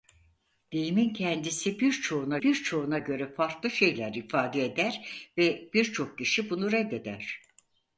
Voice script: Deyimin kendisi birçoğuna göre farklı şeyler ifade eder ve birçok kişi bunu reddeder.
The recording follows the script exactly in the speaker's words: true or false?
false